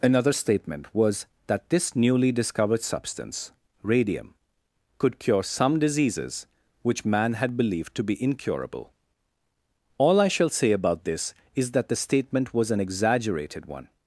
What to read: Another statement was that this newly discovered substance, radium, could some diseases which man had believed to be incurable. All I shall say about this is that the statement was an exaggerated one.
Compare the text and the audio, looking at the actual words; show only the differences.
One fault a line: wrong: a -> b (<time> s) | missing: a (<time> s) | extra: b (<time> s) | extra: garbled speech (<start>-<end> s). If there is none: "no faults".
extra: cure (5.2 s)